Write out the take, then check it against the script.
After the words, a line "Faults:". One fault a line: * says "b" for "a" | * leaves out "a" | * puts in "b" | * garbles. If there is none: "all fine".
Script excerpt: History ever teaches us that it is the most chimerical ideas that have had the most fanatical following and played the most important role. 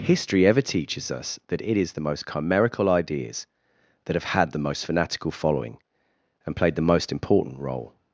History ever teaches us that it is the most chimerical ideas that have had the most fanatical following and played the most important role.
Faults:
all fine